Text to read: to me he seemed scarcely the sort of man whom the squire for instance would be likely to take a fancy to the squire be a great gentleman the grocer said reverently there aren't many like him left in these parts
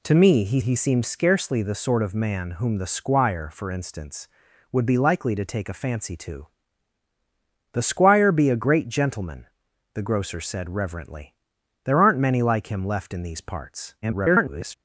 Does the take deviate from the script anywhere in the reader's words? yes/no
yes